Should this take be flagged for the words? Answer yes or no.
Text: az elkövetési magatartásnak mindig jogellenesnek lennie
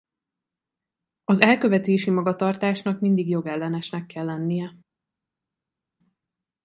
yes